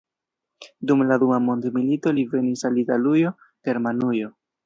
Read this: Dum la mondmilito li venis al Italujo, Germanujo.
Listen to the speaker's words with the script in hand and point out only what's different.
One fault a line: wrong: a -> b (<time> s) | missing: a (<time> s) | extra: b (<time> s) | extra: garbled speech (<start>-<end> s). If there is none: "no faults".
extra: dua (1.2 s)